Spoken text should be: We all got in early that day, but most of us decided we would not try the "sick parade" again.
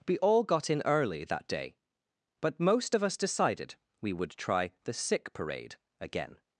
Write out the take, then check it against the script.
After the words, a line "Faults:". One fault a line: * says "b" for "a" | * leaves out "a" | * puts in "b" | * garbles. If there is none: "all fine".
We all got in early that day, but most of us decided we would try the "sick parade" again.
Faults:
* leaves out "not"